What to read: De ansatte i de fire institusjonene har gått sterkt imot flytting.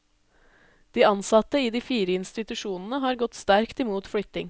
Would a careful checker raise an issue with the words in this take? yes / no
no